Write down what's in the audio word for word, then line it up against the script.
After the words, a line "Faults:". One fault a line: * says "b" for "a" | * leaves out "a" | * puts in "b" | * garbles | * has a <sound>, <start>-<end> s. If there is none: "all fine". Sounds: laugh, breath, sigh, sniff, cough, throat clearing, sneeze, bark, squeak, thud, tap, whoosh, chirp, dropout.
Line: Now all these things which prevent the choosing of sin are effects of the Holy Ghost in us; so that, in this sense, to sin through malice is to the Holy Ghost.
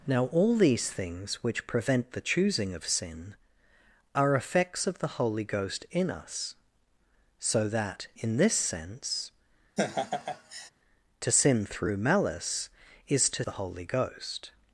Now all these things which prevent the choosing of sin are effects of the Holy Ghost in us; so that, in this sense, to sin through malice is to the Holy Ghost.
Faults:
* has a laugh, 9.8-10.7 s